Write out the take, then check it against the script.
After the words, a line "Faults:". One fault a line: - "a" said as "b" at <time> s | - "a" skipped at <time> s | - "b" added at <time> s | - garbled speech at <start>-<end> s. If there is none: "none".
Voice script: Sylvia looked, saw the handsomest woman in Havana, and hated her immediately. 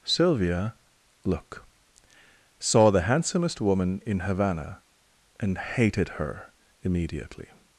Sylvia look, saw the handsomest woman in Havana, and hated her immediately.
Faults:
- "looked" said as "look" at 1.2 s